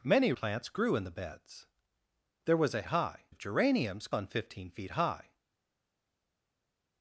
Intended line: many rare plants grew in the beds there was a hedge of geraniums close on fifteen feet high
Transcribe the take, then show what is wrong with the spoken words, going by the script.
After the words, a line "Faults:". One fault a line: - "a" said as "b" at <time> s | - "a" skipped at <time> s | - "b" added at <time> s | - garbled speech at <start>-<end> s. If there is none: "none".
many plants grew in the beds there was a high of geraniums on fifteen feet high
Faults:
- "rare" skipped at 0.3 s
- "hedge" said as "high" at 2.8 s
- "close" skipped at 4.1 s